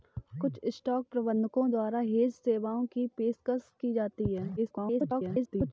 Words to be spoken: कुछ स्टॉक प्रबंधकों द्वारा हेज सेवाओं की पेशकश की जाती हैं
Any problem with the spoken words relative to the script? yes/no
yes